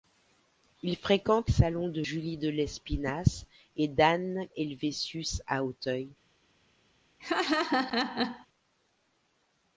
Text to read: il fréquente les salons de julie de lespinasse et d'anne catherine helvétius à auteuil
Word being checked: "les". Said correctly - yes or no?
no